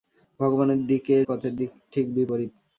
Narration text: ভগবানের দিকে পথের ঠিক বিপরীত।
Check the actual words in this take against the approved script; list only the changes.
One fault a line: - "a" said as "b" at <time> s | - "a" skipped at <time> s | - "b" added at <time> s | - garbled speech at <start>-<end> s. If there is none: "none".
none